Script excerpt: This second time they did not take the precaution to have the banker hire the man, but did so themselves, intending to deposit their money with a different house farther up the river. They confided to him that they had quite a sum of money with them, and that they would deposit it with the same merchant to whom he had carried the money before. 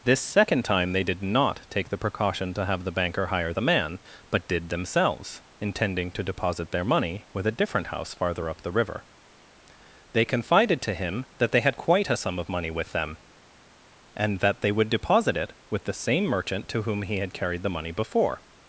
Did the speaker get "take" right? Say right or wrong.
right